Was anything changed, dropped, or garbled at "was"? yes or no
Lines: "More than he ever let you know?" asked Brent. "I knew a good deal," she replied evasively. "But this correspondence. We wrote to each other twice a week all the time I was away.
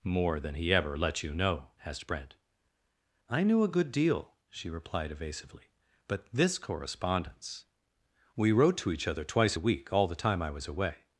no